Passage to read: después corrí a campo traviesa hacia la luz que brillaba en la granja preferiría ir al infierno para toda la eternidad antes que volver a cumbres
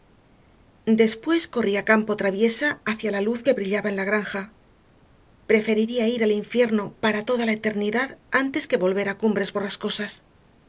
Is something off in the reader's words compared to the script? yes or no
no